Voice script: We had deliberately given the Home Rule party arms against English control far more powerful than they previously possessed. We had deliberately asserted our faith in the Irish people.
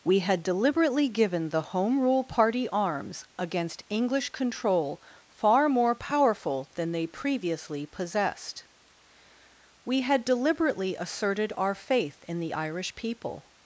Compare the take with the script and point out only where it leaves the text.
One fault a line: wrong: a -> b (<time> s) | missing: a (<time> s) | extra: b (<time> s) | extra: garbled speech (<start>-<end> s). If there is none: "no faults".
no faults